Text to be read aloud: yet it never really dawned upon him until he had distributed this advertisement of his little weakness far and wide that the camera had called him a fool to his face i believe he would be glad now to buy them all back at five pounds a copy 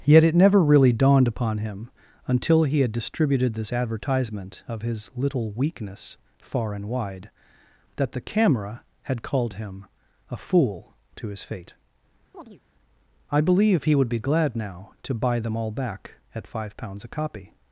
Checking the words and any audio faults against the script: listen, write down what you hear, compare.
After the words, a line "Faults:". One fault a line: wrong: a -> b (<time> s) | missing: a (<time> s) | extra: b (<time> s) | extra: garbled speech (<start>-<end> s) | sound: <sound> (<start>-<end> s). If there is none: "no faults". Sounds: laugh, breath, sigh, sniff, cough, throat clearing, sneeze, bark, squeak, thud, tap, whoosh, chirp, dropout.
yet it never really dawned upon him until he had distributed this advertisement of his little weakness far and wide that the camera had called him a fool to his fate i believe he would be glad now to buy them all back at five pounds a copy
Faults:
wrong: face -> fate (11.4 s)
sound: chirp (12.3-12.6 s)